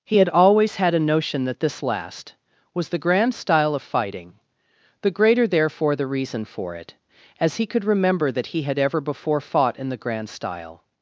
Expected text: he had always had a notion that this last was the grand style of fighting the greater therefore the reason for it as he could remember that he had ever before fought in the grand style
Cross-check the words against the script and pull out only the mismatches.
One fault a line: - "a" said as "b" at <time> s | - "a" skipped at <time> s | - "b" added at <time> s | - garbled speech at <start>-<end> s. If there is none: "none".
none